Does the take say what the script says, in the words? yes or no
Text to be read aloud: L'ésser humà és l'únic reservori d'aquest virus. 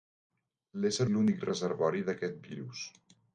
no